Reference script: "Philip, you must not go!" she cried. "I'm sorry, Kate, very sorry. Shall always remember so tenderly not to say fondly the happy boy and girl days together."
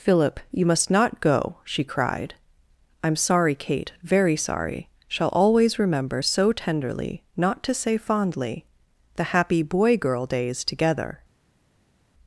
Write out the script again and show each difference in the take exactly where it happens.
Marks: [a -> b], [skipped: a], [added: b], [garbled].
"Philip, you must not go!" she cried. "I'm sorry, Kate, very sorry. Shall always remember so tenderly not to say fondly the happy boy [skipped: and] girl days together."